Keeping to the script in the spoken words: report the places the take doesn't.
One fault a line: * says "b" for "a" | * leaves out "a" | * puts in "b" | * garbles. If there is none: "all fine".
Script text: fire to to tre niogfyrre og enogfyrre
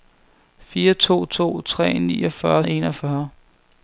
all fine